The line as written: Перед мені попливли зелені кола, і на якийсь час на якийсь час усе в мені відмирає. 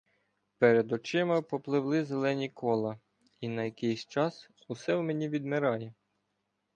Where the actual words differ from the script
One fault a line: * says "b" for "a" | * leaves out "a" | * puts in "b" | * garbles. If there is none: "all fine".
* says "очима" for "мені"
* leaves out "на якийсь час"